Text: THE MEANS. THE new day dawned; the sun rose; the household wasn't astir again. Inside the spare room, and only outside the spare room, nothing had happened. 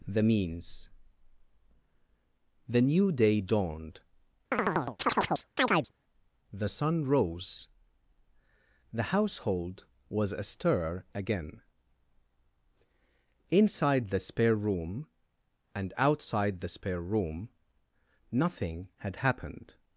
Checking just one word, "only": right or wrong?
wrong